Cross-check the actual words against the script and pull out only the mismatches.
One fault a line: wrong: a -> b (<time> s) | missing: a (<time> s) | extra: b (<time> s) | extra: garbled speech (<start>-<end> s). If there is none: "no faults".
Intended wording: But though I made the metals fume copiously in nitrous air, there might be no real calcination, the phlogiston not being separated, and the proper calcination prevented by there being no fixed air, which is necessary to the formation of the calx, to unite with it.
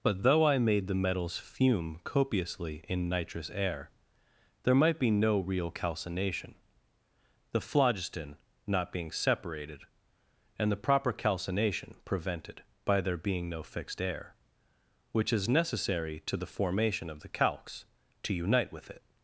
no faults